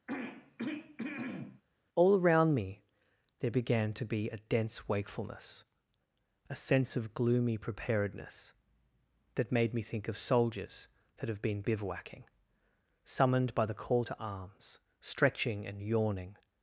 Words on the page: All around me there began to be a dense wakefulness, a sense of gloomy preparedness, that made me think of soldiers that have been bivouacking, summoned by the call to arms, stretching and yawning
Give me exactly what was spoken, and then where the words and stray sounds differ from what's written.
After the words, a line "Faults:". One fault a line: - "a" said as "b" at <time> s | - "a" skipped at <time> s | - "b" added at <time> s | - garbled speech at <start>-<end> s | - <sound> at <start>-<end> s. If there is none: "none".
All around me there began to be a dense wakefulness, a sense of gloomy preparedness, that made me think of soldiers that have been bivouacking, summoned by the call to arms, stretching and yawning
Faults:
- throat clearing at 0.1-1.6 s